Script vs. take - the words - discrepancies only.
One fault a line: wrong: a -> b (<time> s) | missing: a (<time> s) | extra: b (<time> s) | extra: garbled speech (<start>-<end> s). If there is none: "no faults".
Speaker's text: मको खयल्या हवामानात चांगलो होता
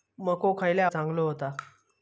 missing: हवामानात (0.9 s)